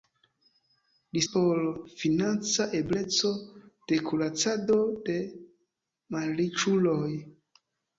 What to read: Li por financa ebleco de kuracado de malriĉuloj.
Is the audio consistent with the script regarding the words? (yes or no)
yes